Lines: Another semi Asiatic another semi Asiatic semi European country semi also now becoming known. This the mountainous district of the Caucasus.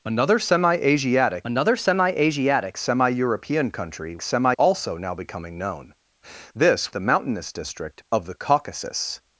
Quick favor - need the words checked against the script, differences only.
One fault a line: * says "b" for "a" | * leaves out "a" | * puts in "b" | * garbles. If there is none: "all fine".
all fine